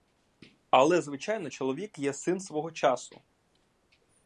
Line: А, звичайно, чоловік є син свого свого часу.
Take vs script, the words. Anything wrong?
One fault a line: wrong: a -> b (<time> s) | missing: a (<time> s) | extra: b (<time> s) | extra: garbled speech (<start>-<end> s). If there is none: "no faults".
wrong: А -> Але (0.7 s)
missing: свого (2.7 s)